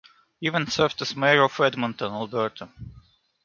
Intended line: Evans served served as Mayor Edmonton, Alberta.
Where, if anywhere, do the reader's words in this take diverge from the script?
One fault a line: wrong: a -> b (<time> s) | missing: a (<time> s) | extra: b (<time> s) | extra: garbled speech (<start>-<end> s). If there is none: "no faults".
missing: served (1.0 s)
extra: of (1.4 s)